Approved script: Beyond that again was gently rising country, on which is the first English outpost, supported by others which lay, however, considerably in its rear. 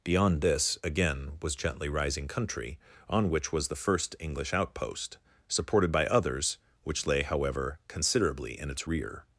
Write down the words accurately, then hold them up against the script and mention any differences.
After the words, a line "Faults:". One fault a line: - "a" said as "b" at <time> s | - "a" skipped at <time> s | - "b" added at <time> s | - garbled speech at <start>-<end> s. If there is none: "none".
Beyond this again was gently rising country, on which was the first English outpost, supported by others which lay, however, considerably in its rear.
Faults:
- "that" said as "this" at 0.4 s
- "is" said as "was" at 3.5 s